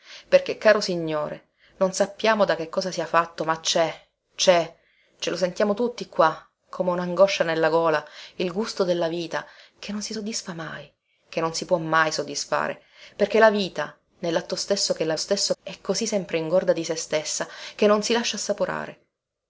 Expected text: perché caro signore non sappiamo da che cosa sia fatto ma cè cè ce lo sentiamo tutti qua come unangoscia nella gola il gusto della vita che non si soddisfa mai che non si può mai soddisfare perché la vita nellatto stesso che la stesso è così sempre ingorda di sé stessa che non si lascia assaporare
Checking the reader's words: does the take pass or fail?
pass